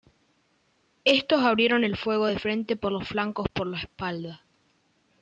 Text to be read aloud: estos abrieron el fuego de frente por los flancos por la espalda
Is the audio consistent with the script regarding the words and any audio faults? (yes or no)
yes